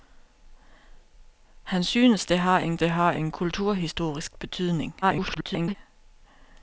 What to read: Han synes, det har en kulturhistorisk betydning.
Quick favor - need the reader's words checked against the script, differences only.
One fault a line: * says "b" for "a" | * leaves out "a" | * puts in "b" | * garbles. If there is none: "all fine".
* puts in "det har en"
* garbles